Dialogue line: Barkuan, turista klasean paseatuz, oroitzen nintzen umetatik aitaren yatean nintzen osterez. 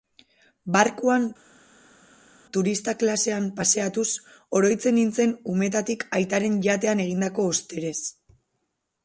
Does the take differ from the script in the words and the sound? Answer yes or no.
yes